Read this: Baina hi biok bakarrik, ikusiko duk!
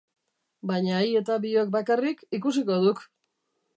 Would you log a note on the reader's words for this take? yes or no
yes